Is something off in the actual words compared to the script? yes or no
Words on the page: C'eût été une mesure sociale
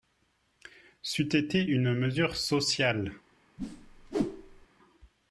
no